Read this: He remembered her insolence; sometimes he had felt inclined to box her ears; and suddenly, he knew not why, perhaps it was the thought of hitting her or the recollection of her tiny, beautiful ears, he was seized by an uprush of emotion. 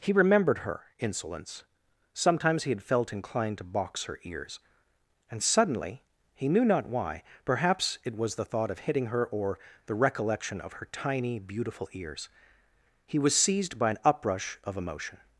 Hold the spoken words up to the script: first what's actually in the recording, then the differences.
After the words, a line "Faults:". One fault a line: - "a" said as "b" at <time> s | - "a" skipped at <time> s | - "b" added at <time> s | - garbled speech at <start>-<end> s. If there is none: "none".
He remembered her insolence; sometimes he had felt inclined to box her ears; and suddenly, he knew not why, perhaps it was the thought of hitting her or the recollection of her tiny, beautiful ears, he was seized by an uprush of emotion.
Faults:
none